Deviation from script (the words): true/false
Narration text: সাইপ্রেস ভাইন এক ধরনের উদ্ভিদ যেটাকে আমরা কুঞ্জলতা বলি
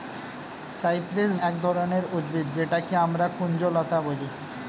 true